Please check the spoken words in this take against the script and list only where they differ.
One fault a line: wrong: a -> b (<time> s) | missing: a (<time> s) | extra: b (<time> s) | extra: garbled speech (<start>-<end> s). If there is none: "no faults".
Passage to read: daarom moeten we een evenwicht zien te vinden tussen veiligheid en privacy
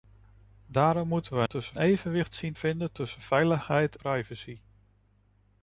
wrong: een -> tussen (1.5 s)
missing: te (2.5 s)
missing: en (4.0 s)